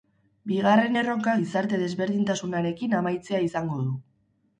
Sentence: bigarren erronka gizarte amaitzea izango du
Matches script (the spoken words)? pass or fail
fail